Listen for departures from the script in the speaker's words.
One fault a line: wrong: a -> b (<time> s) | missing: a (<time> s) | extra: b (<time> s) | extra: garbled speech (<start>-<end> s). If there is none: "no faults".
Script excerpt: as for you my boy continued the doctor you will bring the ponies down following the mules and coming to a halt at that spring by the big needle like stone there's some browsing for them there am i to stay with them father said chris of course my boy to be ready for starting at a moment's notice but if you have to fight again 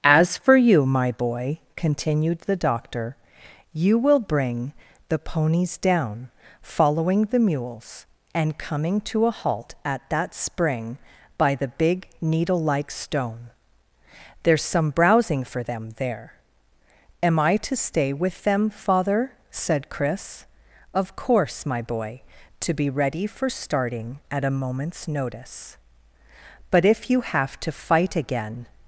no faults